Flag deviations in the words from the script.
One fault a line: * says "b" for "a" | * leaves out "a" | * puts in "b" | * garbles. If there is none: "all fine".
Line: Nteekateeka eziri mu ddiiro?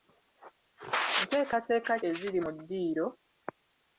all fine